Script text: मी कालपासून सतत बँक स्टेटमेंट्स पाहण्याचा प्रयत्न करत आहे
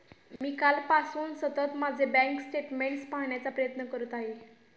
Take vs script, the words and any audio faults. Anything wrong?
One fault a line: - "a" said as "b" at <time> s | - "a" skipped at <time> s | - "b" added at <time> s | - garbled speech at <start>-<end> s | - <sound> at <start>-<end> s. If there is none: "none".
- dropout at 0.4-0.4 s
- "माझे" added at 1.8 s